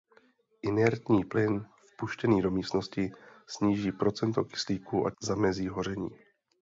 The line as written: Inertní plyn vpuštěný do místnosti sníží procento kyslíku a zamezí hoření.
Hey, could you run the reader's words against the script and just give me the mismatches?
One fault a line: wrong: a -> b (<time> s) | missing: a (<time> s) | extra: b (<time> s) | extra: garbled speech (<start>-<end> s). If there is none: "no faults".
no faults